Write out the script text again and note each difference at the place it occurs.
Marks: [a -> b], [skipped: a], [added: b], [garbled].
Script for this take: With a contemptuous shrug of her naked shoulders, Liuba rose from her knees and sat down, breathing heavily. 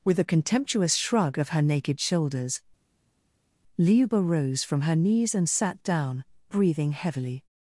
With a contemptuous shrug of her naked shoulders, Liuba rose from her knees and sat down, breathing heavily.